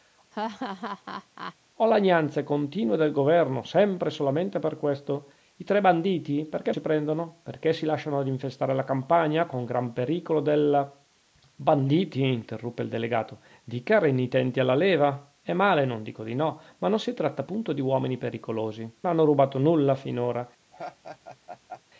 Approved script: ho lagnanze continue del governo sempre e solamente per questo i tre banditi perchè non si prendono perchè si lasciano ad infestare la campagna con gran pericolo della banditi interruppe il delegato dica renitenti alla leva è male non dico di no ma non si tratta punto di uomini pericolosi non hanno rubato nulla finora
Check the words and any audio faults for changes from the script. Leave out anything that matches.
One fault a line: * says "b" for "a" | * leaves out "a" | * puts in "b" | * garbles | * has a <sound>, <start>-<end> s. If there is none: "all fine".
* has a laugh, 0.3-1.6 s
* leaves out "non"
* leaves out "non"
* has a laugh, 20.7-21.8 s